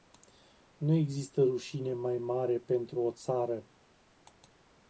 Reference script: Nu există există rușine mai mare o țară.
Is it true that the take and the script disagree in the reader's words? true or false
true